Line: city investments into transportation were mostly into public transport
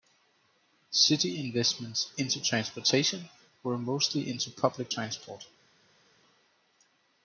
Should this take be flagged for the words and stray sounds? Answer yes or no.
no